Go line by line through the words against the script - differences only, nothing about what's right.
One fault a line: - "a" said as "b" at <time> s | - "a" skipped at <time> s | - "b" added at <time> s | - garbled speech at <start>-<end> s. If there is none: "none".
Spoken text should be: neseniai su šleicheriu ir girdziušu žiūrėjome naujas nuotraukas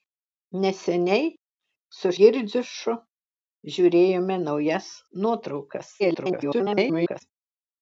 - "šleicheriu ir" skipped at 2.1 s
- garbled speech at 6.0-7.2 s